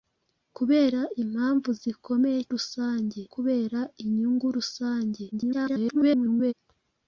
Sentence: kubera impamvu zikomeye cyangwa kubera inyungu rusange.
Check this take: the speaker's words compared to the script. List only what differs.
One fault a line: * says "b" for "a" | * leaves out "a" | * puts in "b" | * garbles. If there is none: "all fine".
* says "rusange" for "cyangwa"
* garbles